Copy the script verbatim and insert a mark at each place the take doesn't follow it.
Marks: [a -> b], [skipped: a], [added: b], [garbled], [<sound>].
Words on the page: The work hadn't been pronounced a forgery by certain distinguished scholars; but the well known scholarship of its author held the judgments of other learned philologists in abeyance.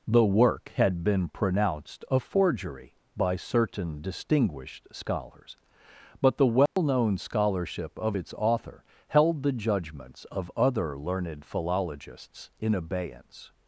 The work [hadn't -> had] been pronounced a forgery by certain distinguished scholars; but the well [dropout] known scholarship of its author held the judgments of other learned philologists in abeyance.